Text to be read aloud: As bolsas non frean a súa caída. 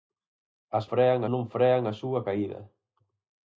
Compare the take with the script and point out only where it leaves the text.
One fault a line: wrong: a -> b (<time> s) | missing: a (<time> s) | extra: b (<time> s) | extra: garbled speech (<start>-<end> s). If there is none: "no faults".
wrong: bolsas -> frean (0.9 s)